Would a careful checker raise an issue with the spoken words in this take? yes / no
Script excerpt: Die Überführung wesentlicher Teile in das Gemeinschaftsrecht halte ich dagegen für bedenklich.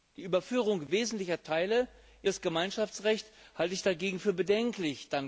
no